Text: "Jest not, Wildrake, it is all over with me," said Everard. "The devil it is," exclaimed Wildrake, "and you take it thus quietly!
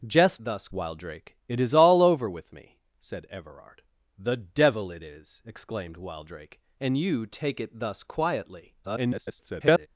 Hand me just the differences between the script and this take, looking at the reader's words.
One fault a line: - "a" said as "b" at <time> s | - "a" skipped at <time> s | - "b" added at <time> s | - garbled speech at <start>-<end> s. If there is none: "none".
- "not" said as "thus" at 0.4 s
- garbled speech at 8.8-9.9 s